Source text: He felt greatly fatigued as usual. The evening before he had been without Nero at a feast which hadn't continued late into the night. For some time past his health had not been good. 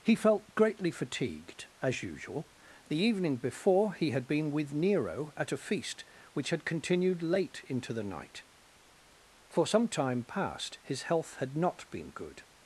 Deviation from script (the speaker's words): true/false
true